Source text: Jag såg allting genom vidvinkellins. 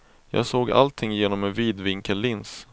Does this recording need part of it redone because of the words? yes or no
yes